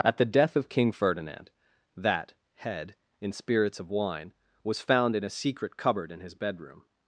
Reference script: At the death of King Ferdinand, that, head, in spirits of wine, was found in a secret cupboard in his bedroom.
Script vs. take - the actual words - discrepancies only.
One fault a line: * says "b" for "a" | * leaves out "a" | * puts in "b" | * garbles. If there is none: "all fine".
all fine